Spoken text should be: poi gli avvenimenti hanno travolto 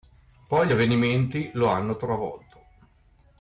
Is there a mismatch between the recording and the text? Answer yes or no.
yes